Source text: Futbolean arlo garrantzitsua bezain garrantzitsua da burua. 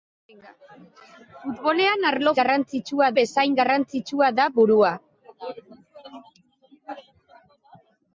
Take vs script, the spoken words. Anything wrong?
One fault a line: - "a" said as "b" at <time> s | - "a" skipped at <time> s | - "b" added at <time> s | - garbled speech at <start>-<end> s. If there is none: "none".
none